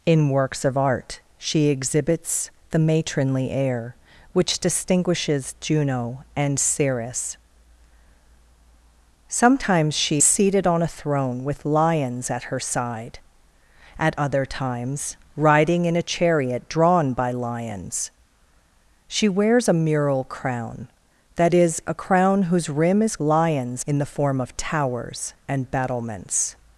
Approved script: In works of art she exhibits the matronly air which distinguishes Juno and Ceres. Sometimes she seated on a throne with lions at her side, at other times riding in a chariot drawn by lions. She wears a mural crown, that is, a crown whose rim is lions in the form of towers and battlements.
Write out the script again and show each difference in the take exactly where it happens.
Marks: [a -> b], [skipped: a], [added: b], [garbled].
In works of art she exhibits the matronly air which distinguishes Juno and Ceres. Sometimes she seated on a throne with lions at her side, at other times riding in a chariot drawn by lions. She wears a mural crown, that is, a crown whose rim is lions in the form of towers and battlements.